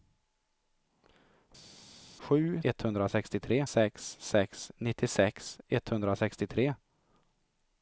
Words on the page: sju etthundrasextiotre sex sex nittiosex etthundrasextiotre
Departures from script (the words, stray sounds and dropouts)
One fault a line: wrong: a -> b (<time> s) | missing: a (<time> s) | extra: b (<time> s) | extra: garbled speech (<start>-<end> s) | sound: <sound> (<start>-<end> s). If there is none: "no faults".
no faults